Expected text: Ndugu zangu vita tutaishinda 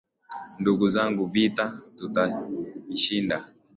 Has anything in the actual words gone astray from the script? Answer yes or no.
no